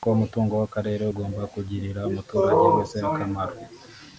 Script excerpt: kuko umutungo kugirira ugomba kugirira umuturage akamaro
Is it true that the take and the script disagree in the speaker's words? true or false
true